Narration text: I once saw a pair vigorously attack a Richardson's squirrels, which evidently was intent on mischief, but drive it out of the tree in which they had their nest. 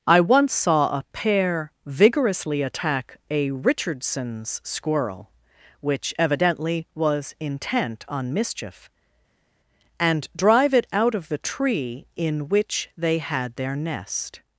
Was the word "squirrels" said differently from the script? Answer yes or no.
yes